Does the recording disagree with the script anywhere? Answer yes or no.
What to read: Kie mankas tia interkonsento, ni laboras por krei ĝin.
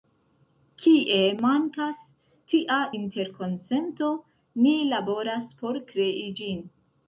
no